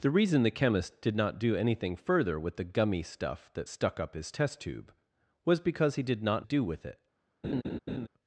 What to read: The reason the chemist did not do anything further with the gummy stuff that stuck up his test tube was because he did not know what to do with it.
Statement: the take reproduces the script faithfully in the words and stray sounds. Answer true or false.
false